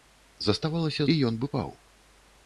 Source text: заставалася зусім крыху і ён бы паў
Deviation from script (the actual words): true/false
true